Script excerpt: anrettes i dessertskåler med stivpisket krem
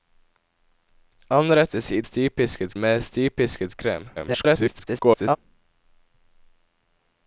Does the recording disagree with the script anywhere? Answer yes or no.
yes